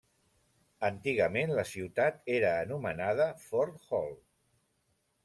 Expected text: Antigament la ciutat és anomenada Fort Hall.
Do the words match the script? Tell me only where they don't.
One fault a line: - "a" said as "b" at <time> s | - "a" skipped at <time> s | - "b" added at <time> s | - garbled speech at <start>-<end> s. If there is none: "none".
- "és" said as "era" at 2.4 s